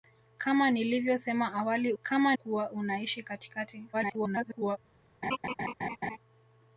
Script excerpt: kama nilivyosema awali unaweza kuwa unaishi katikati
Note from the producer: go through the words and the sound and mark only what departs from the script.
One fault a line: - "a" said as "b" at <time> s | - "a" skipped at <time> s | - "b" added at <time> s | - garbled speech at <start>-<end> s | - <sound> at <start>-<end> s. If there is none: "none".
- "unaweza" said as "kama" at 2.0 s
- garbled speech at 3.9-4.8 s
- laugh at 5.2-6.2 s